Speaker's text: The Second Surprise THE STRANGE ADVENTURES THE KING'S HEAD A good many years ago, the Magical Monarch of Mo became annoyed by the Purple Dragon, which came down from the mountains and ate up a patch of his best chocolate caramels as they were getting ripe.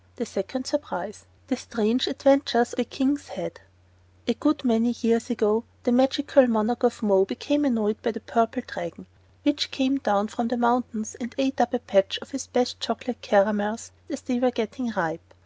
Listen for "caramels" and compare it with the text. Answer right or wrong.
right